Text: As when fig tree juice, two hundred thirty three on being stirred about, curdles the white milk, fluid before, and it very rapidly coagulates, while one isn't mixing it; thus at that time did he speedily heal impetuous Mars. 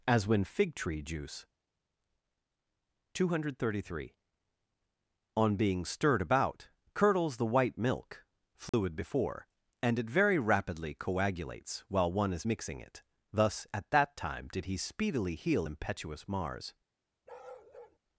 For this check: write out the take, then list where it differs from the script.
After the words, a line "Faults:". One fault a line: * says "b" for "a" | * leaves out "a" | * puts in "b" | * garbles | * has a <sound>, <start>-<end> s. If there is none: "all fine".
As when fig tree juice, two hundred thirty three on being stirred about, curdles the white milk, fluid before, and it very rapidly coagulates, while one is mixing it; thus at that time did he speedily heal impetuous Mars.
Faults:
* has a dropout, 8.7-8.7 s
* says "is" for "isn't"
* has a bark, 17.3-18.0 s